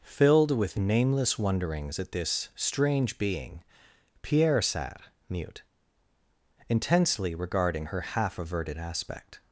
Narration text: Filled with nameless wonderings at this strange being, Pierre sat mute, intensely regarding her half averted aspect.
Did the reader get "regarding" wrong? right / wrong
right